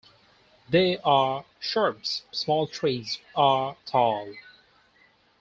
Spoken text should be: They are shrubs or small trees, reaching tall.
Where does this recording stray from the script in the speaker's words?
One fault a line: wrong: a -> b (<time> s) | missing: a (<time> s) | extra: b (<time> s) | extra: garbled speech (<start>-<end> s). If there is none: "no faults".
missing: or (2.2 s)
wrong: reaching -> are (3.4 s)